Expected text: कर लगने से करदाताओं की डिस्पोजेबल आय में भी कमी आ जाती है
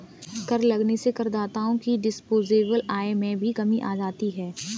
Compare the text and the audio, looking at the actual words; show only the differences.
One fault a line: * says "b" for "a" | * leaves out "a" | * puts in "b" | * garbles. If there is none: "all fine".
all fine